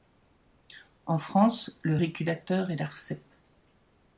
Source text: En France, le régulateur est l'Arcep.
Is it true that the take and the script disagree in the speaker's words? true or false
false